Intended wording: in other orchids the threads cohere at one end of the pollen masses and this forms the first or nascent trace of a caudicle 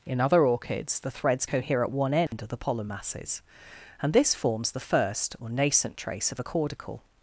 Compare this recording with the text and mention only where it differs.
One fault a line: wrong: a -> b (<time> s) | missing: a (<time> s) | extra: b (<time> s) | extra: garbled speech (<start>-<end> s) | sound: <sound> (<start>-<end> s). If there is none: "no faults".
sound: dropout (2.3-2.3 s)